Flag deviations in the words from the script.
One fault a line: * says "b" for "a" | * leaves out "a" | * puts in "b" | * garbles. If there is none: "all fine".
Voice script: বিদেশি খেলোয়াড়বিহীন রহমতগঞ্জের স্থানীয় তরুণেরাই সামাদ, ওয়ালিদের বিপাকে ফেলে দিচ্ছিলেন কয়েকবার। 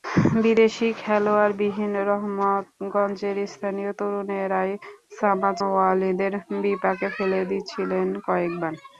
all fine